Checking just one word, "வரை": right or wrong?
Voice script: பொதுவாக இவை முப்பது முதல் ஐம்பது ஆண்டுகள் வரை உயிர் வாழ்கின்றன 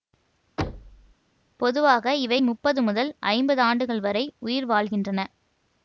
right